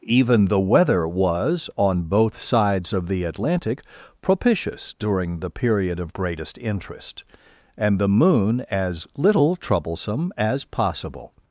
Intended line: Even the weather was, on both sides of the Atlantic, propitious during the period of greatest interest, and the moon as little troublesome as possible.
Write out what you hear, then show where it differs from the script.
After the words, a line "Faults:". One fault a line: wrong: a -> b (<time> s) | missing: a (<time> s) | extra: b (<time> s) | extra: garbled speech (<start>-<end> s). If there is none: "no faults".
Even the weather was, on both sides of the Atlantic, propitious during the period of greatest interest, and the moon as little troublesome as possible.
Faults:
no faults